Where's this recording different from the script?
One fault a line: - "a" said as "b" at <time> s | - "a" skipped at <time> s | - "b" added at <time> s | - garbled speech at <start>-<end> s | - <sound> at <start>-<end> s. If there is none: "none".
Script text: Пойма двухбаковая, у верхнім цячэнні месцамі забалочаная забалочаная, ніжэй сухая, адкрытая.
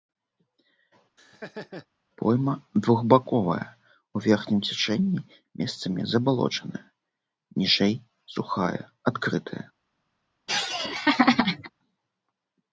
- laugh at 1.2-1.9 s
- "забалочаная" skipped at 6.8 s
- laugh at 10.5-11.7 s